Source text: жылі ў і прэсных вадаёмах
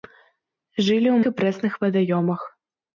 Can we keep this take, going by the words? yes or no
yes